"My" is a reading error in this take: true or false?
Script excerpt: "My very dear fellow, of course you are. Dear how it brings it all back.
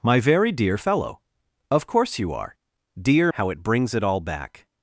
false